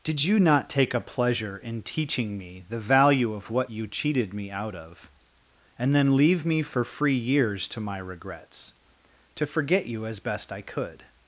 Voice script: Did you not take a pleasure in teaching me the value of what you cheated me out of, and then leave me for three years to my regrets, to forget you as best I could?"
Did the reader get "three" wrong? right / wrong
wrong